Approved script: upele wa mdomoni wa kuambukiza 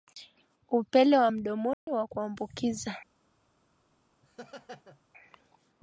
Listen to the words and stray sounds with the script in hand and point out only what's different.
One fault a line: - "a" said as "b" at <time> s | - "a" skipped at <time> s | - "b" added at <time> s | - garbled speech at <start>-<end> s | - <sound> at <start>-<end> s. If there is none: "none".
- dropout at 1.7-1.9 s
- laugh at 4.2-5.0 s